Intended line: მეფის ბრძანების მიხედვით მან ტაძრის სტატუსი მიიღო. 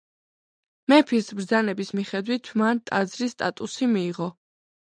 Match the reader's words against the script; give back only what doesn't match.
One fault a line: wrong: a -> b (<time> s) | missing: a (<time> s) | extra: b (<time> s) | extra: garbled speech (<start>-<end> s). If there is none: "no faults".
no faults